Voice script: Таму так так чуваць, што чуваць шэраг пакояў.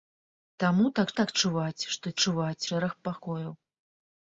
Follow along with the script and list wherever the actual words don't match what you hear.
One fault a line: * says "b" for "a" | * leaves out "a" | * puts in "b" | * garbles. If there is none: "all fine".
all fine